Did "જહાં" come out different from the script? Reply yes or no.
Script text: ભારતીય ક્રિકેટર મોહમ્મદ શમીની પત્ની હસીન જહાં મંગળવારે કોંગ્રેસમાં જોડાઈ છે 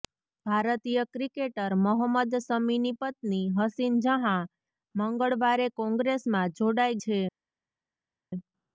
no